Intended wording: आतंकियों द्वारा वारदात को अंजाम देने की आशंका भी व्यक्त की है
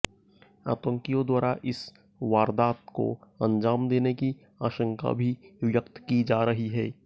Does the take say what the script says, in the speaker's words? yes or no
no